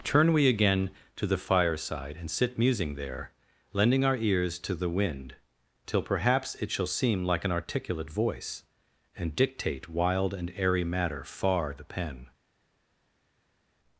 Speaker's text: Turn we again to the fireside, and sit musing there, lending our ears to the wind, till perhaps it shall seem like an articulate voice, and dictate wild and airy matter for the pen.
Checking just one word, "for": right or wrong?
wrong